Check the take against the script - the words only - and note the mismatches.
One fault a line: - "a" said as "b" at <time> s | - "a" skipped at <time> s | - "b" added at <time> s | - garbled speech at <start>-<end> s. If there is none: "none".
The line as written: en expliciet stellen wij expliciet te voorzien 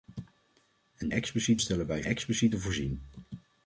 none